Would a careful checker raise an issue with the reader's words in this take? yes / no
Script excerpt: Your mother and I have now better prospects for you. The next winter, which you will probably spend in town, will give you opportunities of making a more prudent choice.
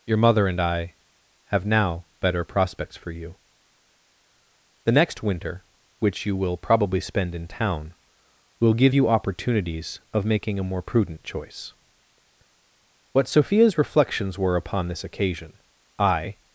yes